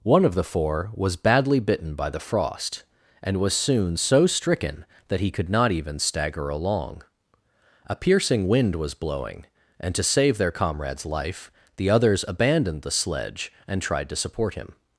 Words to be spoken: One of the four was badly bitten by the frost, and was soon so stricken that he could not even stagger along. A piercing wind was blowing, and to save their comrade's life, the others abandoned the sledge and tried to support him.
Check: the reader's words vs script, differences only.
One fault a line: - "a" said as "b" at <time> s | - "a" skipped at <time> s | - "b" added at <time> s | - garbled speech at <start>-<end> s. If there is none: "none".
none